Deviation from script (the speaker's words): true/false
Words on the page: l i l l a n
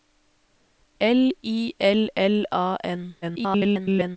true